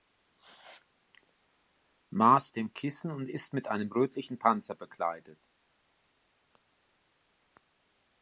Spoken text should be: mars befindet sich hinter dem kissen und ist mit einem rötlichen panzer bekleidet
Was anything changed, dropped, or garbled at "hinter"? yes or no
yes